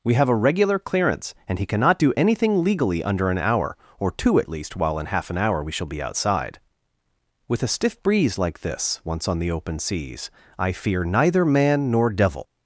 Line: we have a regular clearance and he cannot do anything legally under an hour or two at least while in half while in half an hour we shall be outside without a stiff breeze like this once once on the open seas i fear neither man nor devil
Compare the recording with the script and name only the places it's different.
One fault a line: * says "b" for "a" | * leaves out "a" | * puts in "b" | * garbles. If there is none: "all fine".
* leaves out "while in half"
* says "with" for "without"
* leaves out "once"